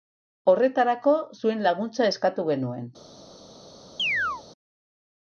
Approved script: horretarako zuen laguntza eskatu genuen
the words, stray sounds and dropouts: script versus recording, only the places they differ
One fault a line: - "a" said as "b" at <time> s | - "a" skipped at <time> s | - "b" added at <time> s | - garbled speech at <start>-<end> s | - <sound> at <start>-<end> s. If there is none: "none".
- chirp at 4.0-4.4 s